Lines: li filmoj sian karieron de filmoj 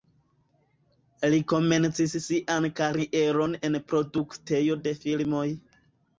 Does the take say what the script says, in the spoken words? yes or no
no